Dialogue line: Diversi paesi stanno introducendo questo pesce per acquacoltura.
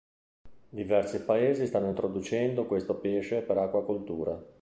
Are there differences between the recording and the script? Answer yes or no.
no